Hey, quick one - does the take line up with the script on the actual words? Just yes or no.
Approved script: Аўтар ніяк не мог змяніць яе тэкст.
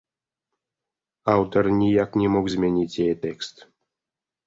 yes